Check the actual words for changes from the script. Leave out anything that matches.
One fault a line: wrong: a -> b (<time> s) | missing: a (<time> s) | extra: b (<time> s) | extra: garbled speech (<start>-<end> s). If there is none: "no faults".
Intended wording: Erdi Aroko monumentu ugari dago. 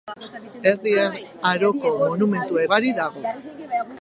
no faults